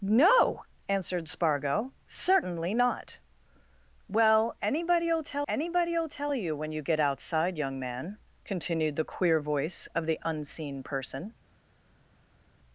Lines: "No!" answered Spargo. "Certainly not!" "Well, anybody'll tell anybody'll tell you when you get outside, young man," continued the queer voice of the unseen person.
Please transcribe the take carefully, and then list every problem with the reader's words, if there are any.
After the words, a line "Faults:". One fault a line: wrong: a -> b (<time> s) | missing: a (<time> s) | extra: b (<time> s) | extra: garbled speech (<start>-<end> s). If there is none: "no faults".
"No!" answered Spargo. "Certainly not!" "Well, anybody'll tell anybody'll tell you when you get outside, young man," continued the queer voice of the unseen person.
Faults:
no faults